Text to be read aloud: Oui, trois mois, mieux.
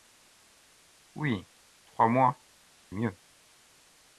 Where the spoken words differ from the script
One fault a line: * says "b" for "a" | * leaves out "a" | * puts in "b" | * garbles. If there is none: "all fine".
all fine